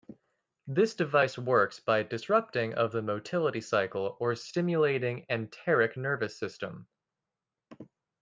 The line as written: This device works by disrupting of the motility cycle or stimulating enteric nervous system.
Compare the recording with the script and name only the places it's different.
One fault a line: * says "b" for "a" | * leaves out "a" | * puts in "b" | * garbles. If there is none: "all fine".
all fine